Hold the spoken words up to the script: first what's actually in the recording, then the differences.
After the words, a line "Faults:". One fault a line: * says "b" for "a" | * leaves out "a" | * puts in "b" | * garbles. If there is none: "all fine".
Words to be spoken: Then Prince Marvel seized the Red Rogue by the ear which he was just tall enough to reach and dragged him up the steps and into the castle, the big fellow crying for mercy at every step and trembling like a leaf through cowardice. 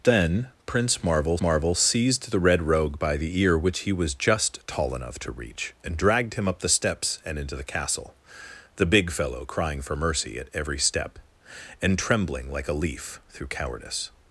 Then Prince Marvel Marvel seized the Red Rogue by the ear which he was just tall enough to reach and dragged him up the steps and into the castle, the big fellow crying for mercy at every step and trembling like a leaf through cowardice.
Faults:
* puts in "Marvel"